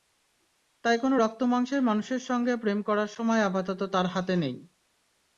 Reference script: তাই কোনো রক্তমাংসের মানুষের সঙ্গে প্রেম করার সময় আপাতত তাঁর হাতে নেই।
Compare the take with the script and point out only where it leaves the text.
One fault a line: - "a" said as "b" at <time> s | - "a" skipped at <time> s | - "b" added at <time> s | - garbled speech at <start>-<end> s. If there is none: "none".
none